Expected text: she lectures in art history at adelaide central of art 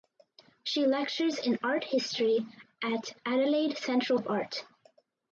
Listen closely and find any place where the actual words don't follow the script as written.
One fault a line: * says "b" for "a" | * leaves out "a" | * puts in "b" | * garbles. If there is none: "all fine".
all fine